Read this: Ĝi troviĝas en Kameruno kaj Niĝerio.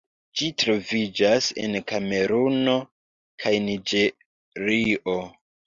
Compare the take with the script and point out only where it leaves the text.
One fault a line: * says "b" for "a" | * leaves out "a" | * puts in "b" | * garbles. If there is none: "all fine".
all fine